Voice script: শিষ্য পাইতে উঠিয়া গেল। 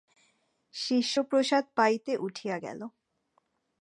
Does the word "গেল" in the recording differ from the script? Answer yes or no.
no